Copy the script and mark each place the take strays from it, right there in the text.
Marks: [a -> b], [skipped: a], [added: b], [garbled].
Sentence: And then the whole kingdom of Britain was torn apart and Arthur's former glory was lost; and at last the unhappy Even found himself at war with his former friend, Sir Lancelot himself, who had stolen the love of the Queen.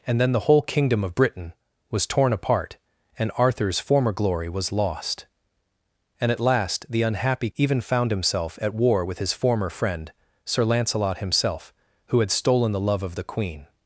And then the whole kingdom of Britain was torn apart and Arthur's former glory was lost; and at last the unhappy Even found himself at war with his former friend, Sir Lancelot himself, who had stolen the love of the Queen.